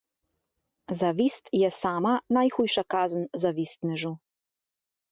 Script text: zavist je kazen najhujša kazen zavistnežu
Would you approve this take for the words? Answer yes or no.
no